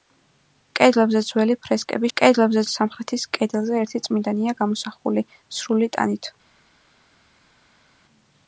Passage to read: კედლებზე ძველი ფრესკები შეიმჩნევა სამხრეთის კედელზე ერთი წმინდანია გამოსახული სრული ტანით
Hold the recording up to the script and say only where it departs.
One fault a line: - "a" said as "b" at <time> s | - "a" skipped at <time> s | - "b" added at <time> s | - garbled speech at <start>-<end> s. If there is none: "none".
- "შეიმჩნევა" said as "კედლებზე" at 2.2 s